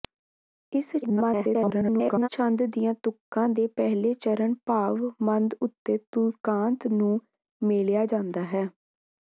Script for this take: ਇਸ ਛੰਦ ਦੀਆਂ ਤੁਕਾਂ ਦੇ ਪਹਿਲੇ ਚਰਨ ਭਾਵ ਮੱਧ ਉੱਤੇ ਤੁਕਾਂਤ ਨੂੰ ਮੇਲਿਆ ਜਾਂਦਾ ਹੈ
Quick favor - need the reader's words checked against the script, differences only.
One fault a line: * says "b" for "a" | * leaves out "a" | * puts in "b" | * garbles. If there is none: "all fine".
* garbles